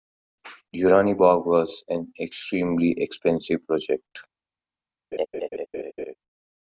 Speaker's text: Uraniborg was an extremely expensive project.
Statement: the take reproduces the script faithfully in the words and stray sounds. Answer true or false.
false